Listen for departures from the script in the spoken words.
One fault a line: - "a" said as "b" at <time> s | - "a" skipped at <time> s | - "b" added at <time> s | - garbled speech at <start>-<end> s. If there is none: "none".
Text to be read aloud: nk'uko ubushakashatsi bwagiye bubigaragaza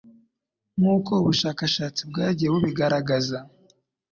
none